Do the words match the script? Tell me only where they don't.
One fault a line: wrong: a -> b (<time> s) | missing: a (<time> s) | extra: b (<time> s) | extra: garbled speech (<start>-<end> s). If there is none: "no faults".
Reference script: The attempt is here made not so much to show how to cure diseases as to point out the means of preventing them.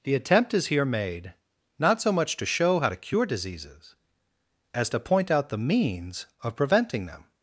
no faults